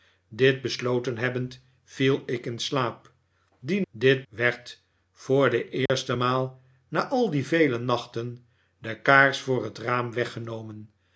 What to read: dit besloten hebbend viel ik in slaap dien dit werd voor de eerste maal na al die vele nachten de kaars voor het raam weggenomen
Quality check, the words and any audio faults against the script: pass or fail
fail